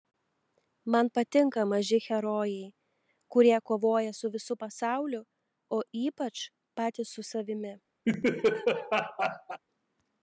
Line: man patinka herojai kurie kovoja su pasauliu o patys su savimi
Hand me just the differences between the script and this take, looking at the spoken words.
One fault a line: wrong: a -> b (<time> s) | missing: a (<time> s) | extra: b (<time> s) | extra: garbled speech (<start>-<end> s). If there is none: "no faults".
extra: maži (1.7 s)
extra: visu (4.4 s)
extra: ypač (6.0 s)